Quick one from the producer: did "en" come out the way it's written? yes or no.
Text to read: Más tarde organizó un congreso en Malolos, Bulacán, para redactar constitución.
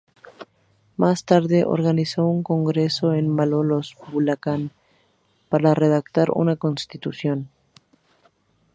yes